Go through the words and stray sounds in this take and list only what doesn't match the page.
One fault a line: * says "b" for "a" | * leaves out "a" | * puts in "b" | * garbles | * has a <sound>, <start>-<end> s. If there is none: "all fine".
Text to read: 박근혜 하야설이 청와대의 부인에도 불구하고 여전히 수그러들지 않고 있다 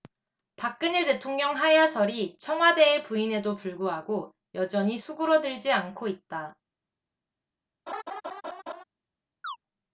* puts in "대통령"
* has a laugh, 7.9-8.8 s
* has a chirp, 9.4-9.6 s